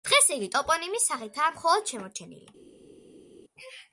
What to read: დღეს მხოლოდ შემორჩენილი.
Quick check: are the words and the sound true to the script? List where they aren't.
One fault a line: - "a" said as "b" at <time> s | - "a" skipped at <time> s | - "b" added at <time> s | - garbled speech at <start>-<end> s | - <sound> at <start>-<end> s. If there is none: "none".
- "იგი ტოპონიმის სახითაა" added at 0.3 s